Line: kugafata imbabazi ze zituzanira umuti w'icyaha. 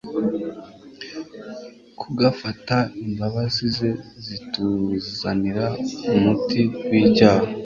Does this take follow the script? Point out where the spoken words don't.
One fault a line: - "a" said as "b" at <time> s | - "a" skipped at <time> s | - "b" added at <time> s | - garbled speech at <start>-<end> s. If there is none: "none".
none